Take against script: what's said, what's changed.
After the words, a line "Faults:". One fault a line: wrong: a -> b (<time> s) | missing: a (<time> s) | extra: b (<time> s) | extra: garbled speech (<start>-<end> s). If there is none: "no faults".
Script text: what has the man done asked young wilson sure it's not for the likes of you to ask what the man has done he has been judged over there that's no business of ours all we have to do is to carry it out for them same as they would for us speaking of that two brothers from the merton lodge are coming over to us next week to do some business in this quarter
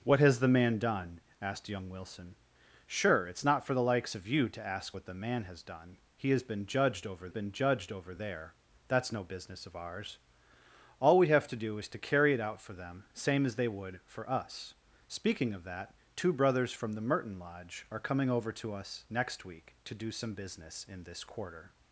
what has the man done asked young wilson sure it's not for the likes of you to ask what the man has done he has been judged over been judged over there that's no business of ours all we have to do is to carry it out for them same as they would for us speaking of that two brothers from the merton lodge are coming over to us next week to do some business in this quarter
Faults:
extra: been judged over (7.3 s)